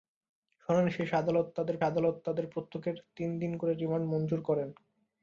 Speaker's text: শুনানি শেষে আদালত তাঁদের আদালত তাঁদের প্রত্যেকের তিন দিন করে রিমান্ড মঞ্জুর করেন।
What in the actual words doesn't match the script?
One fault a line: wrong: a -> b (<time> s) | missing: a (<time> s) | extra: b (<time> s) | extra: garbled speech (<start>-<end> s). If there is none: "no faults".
no faults